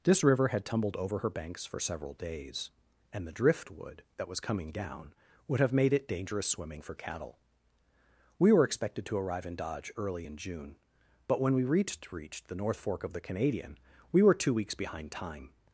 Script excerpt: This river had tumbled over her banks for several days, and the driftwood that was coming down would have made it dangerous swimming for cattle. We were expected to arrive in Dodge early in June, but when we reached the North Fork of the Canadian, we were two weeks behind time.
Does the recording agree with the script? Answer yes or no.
no